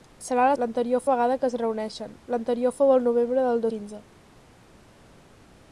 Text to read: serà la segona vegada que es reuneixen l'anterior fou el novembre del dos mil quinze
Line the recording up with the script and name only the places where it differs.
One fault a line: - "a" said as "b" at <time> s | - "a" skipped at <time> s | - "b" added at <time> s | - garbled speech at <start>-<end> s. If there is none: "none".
- "segona" said as "l'anterior" at 0.6 s
- "dos mil" skipped at 3.7 s